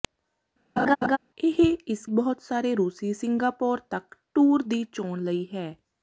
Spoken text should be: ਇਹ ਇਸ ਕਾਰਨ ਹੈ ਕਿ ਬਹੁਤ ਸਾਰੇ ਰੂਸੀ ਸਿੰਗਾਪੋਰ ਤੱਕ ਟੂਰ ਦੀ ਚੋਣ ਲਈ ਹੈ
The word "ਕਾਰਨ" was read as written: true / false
false